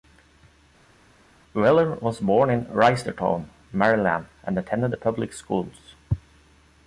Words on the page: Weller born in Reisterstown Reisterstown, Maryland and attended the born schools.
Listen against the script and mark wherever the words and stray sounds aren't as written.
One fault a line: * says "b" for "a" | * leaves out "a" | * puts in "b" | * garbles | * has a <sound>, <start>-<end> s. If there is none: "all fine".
* puts in "was"
* leaves out "Reisterstown"
* says "public" for "born"